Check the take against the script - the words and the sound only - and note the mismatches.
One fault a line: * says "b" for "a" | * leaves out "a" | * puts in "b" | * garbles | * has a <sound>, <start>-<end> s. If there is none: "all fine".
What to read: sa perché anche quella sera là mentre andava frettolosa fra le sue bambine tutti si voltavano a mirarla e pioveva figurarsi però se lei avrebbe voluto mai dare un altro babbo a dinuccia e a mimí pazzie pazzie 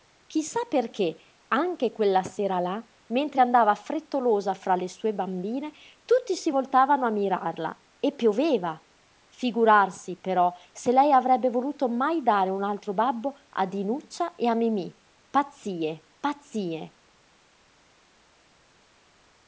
all fine